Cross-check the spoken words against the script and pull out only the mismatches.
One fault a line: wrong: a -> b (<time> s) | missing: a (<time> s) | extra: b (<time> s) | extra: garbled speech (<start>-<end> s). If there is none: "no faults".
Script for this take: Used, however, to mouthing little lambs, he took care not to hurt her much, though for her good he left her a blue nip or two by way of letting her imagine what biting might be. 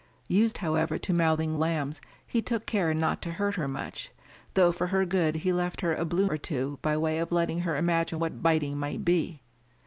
missing: little (1.6 s)
missing: nip (6.3 s)